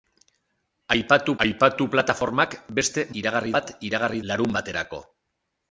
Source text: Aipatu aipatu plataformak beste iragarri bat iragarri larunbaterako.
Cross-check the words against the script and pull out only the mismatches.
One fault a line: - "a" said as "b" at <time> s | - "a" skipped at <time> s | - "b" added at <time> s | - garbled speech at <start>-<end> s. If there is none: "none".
none